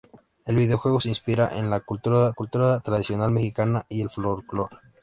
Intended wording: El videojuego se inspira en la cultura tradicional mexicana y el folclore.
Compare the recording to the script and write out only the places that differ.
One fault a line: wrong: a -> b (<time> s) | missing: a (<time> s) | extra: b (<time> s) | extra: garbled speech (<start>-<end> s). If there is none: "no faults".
extra: cultura (2.3 s)